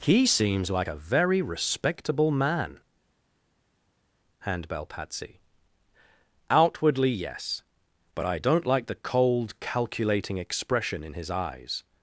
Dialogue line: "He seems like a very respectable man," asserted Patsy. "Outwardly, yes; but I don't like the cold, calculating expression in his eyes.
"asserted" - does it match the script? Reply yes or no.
no